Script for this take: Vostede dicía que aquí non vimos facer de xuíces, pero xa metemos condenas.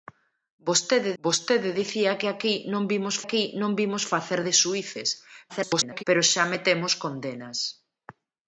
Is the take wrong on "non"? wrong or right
right